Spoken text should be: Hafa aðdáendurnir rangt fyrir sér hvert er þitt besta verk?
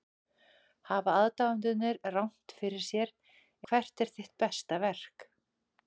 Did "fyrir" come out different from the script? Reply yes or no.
no